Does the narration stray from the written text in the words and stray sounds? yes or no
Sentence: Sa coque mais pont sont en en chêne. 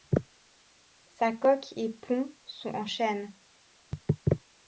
yes